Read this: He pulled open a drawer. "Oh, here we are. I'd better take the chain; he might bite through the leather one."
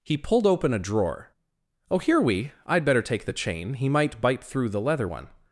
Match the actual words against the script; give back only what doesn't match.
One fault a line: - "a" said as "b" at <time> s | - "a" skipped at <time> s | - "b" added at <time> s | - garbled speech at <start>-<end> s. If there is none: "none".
- "are" skipped at 2.5 s